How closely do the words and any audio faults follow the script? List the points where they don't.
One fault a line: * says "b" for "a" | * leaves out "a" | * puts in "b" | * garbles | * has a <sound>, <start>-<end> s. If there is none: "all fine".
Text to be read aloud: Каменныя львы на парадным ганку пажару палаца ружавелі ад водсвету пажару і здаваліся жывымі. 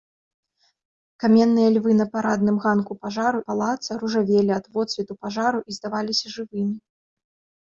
all fine